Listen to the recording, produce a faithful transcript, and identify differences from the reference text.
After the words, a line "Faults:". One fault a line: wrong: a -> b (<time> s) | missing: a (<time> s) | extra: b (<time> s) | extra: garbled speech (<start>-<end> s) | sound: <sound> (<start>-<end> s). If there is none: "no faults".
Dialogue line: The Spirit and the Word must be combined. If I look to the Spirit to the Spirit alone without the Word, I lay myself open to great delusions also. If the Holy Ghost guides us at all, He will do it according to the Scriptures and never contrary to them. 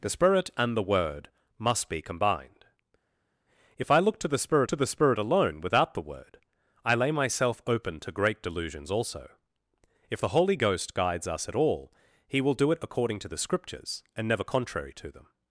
The Spirit and the Word must be combined. If I look to the Spirit to the Spirit alone without the Word, I lay myself open to great delusions also. If the Holy Ghost guides us at all, He will do it according to the Scriptures and never contrary to them.
Faults:
no faults